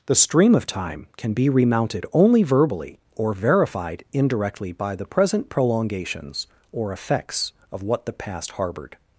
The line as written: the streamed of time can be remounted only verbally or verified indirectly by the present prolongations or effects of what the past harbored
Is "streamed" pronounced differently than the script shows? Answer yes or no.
yes